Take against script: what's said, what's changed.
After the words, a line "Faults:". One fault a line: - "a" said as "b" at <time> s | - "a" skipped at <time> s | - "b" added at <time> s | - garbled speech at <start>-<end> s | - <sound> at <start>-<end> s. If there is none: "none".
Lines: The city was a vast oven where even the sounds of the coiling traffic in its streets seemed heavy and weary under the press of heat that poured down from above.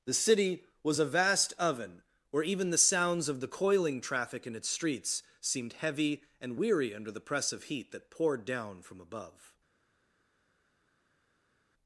The city was a vast oven where even the sounds of the coiling traffic in its streets seemed heavy and weary under the press of heat that poured down from above.
Faults:
none